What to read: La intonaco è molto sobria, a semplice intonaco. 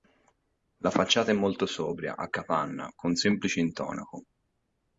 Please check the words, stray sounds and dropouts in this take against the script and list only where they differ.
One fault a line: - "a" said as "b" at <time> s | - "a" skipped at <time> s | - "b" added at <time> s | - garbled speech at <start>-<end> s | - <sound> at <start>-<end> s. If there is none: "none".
- "intonaco" said as "facciata" at 0.9 s
- "capanna con" added at 2.3 s